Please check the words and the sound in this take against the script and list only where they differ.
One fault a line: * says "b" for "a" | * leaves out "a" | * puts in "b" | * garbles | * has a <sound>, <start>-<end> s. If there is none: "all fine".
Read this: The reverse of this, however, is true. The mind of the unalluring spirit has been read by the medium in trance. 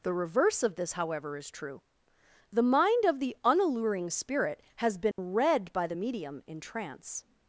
* has a dropout, 5.1-5.2 s